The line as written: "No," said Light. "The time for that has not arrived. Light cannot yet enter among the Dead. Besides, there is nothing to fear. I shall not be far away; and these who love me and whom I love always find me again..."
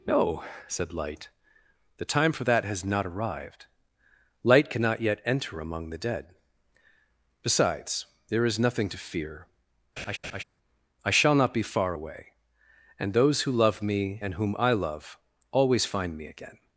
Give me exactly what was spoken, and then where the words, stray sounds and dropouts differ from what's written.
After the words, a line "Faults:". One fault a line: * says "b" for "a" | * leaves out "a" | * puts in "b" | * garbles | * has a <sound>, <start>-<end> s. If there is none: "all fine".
"No," said Light. "The time for that has not arrived. Light cannot yet enter among the Dead. Besides, there is nothing to fear. I shall not be far away; and those who love me and whom I love always find me again..."
Faults:
* has a laugh, 10.0-10.4 s
* says "those" for "these"